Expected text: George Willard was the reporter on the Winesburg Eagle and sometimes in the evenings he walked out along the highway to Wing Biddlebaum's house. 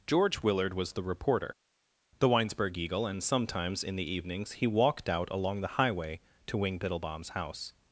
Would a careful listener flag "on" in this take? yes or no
yes